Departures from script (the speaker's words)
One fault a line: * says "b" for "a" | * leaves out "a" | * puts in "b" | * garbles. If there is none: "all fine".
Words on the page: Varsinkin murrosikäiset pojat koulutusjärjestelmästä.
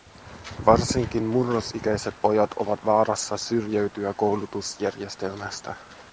* puts in "ovat vaarassa syrjäytyä"